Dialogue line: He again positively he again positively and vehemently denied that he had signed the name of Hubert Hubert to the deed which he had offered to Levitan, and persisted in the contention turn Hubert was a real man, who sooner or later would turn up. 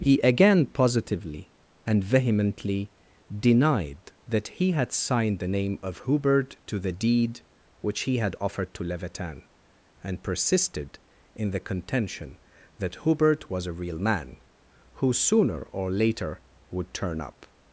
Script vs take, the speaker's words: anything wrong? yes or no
yes